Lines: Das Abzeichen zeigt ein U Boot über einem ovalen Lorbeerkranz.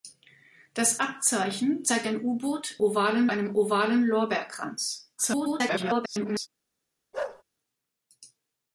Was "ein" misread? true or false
false